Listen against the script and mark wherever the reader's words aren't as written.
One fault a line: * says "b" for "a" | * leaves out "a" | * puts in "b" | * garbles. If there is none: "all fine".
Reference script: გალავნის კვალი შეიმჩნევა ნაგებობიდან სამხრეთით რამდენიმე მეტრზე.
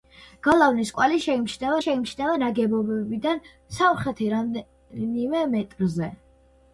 * puts in "შეიმჩნევა"